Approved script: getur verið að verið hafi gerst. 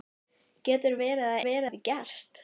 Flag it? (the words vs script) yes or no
no